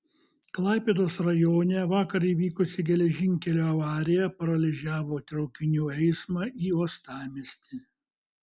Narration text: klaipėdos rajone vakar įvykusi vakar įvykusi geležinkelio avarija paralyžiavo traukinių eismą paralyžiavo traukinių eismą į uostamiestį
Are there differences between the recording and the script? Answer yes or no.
yes